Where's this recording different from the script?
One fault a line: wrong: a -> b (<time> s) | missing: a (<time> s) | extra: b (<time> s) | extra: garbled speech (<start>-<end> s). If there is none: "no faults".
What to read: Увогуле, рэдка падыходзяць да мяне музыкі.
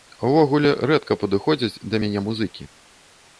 no faults